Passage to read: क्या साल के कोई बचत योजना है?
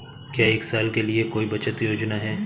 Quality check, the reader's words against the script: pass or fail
fail